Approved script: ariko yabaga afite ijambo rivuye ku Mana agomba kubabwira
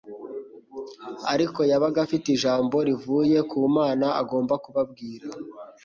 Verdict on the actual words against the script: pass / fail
pass